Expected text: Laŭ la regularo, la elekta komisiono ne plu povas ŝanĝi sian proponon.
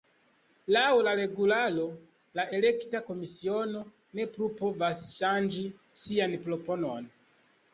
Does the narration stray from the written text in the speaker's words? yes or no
no